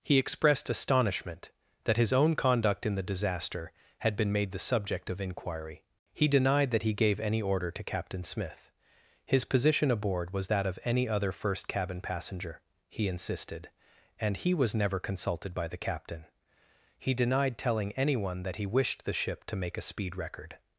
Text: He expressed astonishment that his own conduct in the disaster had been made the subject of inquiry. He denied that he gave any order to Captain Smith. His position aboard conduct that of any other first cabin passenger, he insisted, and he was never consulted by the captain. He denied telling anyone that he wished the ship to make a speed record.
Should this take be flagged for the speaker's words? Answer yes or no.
yes